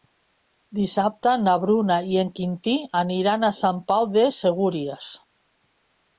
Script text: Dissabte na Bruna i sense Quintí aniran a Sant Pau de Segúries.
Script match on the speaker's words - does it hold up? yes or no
no